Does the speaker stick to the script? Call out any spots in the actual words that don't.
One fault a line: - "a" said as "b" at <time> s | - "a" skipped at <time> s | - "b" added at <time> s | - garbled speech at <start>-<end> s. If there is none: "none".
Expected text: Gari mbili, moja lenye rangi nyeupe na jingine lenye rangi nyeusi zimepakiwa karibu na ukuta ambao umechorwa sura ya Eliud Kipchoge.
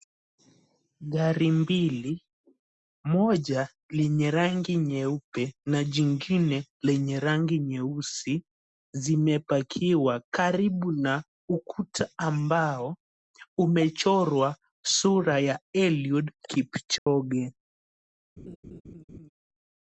none